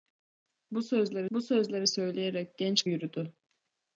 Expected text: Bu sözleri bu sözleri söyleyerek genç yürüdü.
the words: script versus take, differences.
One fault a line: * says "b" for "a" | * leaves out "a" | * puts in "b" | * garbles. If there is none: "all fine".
all fine